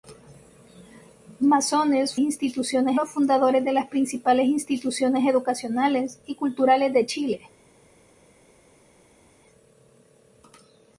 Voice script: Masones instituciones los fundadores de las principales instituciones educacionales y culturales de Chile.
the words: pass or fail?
pass